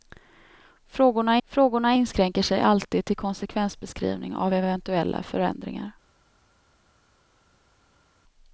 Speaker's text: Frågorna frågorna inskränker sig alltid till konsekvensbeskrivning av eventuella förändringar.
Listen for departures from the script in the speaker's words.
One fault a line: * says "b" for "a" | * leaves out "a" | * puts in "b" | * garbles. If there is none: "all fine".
all fine